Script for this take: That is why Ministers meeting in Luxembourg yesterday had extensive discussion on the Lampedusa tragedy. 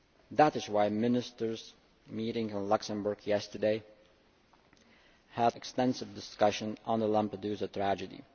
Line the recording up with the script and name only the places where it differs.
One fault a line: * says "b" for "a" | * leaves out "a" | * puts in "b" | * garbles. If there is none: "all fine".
all fine